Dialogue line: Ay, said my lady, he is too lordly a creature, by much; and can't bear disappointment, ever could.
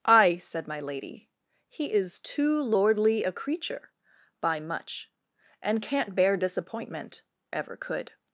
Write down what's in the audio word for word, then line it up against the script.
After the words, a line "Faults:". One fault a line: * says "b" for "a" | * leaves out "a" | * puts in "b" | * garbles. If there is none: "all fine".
Ay, said my lady, he is too lordly a creature, by much; and can't bear disappointment, ever could.
Faults:
all fine